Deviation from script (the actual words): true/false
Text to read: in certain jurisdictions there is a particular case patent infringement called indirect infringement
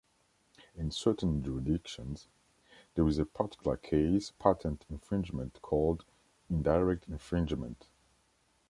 false